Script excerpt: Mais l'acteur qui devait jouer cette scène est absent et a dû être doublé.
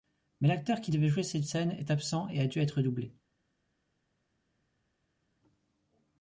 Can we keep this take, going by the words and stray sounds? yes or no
yes